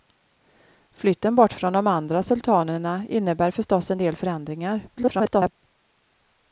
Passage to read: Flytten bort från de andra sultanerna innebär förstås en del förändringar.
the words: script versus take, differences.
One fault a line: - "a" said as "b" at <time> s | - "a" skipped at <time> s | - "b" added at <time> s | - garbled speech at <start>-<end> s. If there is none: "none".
- garbled speech at 4.9-5.5 s